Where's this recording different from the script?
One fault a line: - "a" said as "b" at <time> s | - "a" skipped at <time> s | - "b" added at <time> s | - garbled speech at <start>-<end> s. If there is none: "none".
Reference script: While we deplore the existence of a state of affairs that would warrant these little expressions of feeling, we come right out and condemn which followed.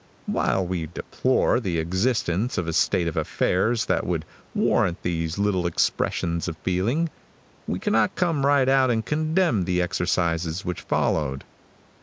- "cannot" added at 7.8 s
- "the exercises" added at 9.7 s